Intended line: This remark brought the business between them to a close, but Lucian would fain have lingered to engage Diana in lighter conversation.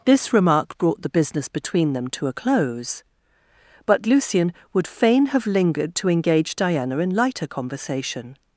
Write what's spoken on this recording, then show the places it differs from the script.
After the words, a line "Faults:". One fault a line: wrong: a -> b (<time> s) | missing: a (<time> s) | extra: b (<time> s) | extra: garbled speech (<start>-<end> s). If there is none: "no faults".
This remark brought the business between them to a close, but Lucian would fain have lingered to engage Diana in lighter conversation.
Faults:
no faults